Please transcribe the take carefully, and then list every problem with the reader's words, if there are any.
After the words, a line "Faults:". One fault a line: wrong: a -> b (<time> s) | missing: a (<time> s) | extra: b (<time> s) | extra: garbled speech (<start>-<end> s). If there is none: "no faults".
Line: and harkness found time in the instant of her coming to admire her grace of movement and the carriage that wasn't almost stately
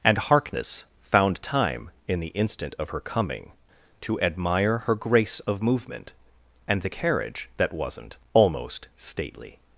and harkness found time in the instant of her coming to admire her grace of movement and the carriage that wasn't almost stately
Faults:
no faults